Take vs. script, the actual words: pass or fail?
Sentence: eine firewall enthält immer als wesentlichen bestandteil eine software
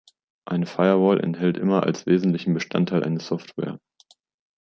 pass